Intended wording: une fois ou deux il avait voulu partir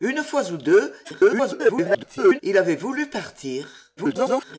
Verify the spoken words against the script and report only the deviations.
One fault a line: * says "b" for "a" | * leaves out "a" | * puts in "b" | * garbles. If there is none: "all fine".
* garbles
* garbles